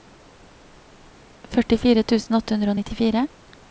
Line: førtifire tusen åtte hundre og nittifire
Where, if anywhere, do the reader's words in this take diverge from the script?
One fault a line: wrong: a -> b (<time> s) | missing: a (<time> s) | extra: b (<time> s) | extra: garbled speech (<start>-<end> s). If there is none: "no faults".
no faults